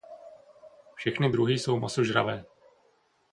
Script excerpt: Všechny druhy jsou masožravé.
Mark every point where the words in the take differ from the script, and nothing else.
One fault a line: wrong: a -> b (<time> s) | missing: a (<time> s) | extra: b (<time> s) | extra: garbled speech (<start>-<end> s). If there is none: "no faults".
no faults